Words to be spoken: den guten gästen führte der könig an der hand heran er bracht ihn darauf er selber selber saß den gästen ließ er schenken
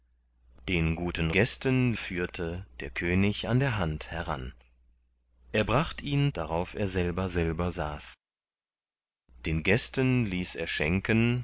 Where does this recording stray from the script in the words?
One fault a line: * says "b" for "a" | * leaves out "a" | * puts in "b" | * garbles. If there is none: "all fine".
all fine